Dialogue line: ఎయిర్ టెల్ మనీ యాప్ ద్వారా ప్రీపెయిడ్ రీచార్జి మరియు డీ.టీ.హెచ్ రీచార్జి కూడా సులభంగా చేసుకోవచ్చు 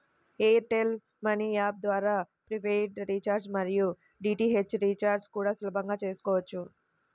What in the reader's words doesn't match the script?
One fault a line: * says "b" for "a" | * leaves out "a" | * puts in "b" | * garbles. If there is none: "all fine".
all fine